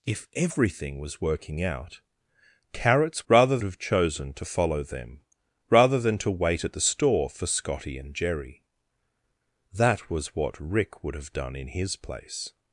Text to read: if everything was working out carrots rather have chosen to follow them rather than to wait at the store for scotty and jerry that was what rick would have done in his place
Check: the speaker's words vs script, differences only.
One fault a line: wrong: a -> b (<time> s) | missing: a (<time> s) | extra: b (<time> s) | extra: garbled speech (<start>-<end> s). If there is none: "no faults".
no faults